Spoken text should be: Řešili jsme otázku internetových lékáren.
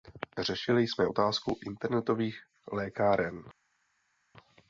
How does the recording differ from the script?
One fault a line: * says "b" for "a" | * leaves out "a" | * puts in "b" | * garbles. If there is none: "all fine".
all fine